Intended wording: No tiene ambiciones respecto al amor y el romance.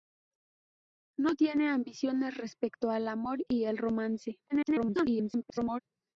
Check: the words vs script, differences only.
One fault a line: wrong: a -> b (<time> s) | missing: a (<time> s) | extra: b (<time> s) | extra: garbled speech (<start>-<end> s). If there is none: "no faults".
extra: garbled speech (4.5-5.8 s)